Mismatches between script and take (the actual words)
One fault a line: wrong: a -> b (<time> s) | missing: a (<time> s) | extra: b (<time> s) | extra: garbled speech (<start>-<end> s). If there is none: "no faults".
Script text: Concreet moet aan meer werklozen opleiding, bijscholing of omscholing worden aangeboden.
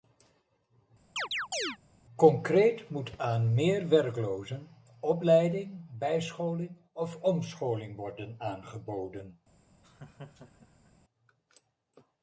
no faults